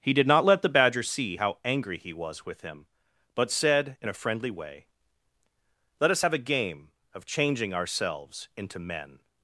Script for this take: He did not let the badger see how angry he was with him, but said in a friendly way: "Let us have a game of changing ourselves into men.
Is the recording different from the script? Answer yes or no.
no